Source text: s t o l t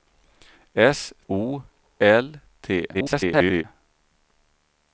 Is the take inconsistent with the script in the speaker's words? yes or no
yes